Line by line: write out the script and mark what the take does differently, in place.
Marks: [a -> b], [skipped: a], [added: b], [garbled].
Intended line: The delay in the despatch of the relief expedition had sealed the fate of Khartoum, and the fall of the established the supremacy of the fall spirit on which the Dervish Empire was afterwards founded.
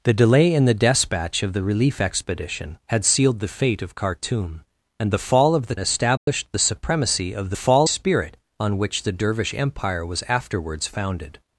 The delay in the despatch of the relief expedition had sealed the fate of Khartoum, and the fall of the established the supremacy of the fall spirit on which the Dervish Empire was afterwards founded.